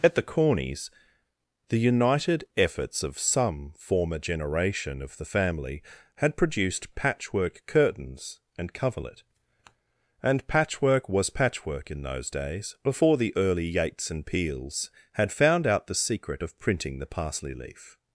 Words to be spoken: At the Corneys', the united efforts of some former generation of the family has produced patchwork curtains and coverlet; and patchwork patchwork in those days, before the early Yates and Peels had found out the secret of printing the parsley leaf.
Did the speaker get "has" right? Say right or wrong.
wrong